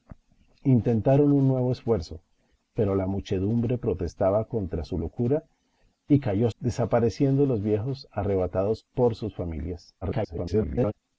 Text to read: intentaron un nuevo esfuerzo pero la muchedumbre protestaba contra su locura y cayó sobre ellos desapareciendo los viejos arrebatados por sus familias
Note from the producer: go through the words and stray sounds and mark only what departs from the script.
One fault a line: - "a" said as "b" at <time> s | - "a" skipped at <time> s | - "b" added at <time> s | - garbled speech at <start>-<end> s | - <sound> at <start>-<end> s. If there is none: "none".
- "sobre ellos" skipped at 6.5 s
- garbled speech at 10.0-10.9 s